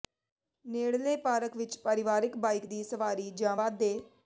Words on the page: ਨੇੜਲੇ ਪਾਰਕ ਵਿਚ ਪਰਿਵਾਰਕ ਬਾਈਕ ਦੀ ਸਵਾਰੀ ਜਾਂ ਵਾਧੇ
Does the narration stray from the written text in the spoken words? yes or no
no